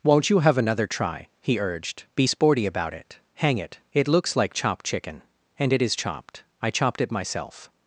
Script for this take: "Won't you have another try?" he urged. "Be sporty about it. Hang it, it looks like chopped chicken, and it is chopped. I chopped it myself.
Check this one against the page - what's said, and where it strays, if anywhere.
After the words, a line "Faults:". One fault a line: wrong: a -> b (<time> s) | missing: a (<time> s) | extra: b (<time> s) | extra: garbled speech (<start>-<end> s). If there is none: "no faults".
"Won't you have another try?" he urged. "Be sporty about it. Hang it, it looks like chopped chicken, and it is chopped. I chopped it myself.
Faults:
no faults